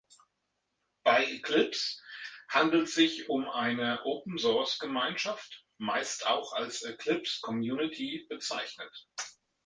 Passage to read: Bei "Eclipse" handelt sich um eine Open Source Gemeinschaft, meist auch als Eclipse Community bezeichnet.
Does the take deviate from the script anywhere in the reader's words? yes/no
no